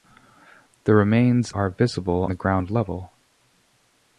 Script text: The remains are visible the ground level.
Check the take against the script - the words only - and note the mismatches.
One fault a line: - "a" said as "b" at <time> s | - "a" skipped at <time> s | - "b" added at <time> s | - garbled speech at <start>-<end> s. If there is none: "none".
none